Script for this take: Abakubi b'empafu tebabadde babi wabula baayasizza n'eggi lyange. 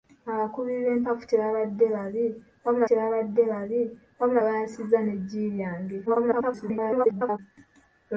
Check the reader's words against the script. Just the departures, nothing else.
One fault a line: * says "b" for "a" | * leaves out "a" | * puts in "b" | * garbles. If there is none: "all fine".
* puts in "tebabadde babi wabula"
* garbles